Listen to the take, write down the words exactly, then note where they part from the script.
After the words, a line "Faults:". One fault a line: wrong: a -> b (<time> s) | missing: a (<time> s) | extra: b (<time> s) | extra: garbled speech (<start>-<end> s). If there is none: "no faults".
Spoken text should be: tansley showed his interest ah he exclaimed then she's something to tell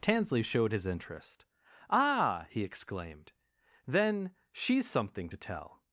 tansley showed his interest ah he exclaimed then she's something to tell
Faults:
no faults